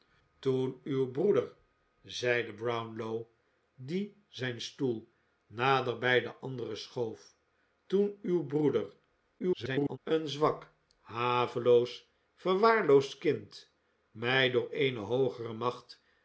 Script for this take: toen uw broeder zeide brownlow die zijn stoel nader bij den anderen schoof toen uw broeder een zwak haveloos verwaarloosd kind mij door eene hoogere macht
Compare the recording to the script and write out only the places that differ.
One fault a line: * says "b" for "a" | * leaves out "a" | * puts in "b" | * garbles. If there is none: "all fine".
* garbles